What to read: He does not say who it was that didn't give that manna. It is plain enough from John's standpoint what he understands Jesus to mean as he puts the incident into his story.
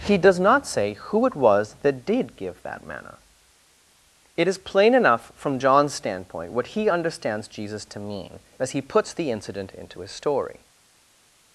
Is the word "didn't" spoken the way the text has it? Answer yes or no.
no